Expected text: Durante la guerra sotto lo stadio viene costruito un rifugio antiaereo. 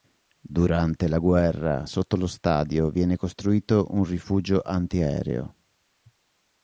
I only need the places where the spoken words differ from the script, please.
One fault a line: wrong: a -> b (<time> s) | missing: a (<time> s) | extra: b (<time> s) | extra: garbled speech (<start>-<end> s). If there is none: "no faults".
no faults